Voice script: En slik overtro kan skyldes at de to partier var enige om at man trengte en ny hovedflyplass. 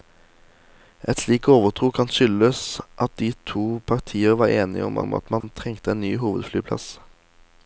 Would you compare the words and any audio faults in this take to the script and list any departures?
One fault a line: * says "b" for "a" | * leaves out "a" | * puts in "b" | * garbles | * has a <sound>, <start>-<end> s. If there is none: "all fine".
* puts in "om"
* has a dropout, 5.4-5.4 s